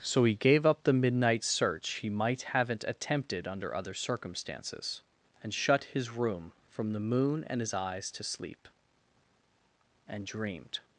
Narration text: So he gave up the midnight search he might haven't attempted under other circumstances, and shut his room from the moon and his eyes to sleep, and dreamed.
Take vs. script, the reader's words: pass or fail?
pass